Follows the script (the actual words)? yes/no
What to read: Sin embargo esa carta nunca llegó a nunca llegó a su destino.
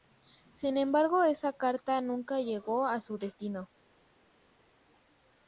no